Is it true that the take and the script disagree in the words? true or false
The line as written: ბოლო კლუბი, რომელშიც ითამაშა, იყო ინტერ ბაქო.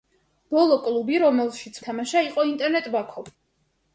false